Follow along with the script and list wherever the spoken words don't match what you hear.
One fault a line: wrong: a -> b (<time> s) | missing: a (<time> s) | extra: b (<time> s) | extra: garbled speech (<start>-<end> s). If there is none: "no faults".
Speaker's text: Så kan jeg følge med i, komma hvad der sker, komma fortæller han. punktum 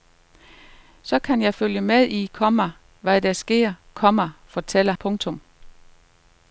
missing: han (4.9 s)